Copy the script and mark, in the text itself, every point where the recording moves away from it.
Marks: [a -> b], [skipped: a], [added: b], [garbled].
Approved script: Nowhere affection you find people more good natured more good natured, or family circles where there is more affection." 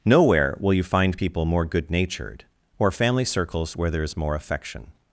Nowhere [affection -> will] you find people more good natured [skipped: more good natured,] or family circles where there is more affection."